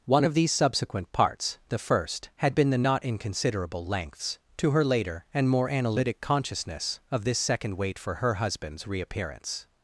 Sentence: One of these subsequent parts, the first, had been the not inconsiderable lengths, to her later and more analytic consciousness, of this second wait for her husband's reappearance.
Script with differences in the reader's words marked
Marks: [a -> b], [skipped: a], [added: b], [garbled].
One of these subsequent parts, the first, had been the not inconsiderable lengths, to her later and more analytic consciousness, of this second wait for her husband's reappearance.